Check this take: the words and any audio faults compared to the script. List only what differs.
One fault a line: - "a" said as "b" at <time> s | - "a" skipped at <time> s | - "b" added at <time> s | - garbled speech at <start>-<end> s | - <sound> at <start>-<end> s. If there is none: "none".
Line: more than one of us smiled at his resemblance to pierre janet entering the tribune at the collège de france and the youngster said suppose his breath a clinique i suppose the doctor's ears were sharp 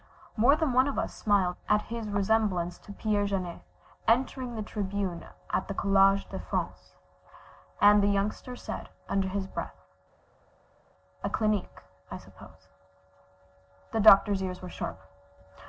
- "suppose" said as "under" at 9.1 s